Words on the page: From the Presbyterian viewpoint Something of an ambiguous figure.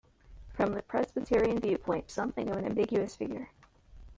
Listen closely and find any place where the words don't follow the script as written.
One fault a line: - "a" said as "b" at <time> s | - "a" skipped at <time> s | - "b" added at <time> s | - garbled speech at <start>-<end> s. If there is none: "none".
none